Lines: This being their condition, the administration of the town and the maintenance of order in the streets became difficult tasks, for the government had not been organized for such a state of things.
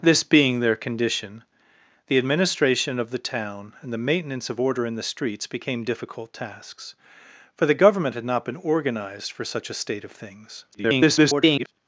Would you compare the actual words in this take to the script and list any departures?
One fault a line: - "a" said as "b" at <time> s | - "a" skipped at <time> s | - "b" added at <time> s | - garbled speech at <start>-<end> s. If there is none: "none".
- garbled speech at 10.7-11.7 s